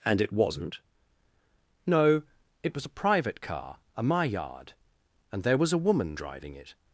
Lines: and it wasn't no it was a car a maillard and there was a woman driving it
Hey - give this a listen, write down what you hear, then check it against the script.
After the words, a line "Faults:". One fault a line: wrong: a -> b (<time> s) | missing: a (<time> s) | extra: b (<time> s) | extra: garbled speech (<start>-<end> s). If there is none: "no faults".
and it wasn't no it was a private car a maillard and there was a woman driving it
Faults:
extra: private (2.9 s)